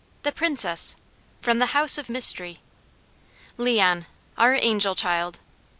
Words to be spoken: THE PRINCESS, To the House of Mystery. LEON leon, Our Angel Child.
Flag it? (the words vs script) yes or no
yes